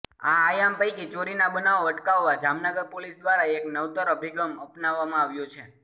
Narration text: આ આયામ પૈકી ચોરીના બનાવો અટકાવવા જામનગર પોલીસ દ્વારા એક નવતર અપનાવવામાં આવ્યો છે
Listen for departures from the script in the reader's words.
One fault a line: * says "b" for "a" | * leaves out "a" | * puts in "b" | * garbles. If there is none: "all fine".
* puts in "અભિગમ"